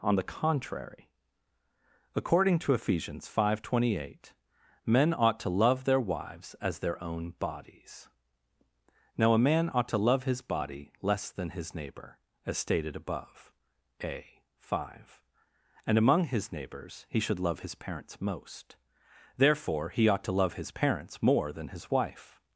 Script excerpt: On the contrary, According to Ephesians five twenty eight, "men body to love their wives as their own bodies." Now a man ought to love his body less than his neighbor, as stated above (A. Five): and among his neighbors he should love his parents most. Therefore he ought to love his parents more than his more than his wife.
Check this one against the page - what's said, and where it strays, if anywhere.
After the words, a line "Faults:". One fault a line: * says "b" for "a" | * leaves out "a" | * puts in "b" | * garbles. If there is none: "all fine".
On the contrary, According to Ephesians five twenty eight, "men ought to love their wives as their own bodies." Now a man ought to love his body less than his neighbor, as stated above (A. Five): and among his neighbors he should love his parents most. Therefore he ought to love his parents more than his wife.
Faults:
* says "ought" for "body"
* leaves out "more than his"